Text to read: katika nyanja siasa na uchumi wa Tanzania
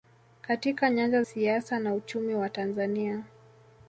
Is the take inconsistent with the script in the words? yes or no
no